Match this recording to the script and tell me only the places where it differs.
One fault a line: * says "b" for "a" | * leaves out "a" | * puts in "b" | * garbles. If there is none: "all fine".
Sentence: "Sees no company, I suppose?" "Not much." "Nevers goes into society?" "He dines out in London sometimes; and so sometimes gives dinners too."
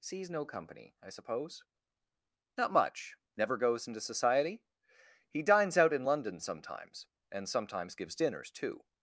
* says "Never" for "Nevers"
* leaves out "so"